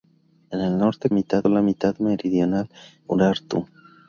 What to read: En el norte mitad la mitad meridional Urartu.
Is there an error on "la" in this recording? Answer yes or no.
no